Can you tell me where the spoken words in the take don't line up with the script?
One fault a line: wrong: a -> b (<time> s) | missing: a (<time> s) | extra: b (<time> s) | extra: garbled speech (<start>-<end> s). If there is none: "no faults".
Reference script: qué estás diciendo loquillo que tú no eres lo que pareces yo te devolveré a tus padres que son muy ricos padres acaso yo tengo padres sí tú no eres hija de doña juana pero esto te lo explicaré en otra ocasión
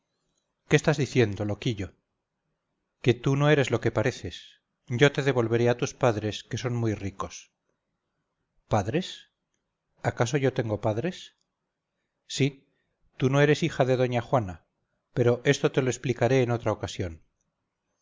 no faults